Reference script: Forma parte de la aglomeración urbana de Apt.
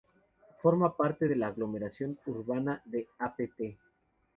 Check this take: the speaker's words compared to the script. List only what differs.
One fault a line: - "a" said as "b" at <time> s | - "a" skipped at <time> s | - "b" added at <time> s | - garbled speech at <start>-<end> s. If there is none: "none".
none